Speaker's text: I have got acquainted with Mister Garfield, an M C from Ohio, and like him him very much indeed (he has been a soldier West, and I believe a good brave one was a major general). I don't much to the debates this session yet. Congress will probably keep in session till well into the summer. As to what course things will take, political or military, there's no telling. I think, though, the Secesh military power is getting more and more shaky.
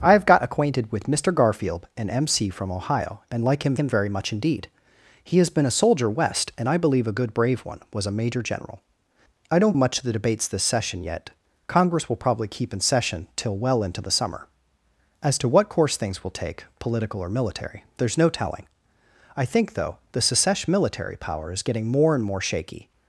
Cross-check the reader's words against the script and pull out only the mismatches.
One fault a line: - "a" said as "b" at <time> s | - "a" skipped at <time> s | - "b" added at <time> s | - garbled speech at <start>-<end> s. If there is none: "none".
none